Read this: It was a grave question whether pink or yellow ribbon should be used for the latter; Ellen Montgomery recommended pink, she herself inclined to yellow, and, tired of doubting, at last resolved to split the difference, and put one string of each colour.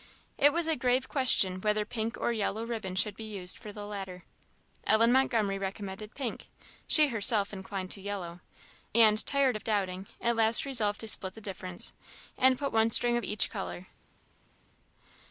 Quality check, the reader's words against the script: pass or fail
pass